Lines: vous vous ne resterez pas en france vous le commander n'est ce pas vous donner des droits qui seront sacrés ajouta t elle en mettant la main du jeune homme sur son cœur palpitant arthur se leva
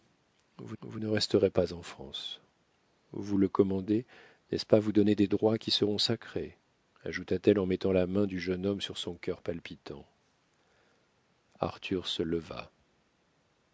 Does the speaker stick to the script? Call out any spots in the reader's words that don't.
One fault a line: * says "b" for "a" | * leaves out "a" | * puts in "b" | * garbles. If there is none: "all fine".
all fine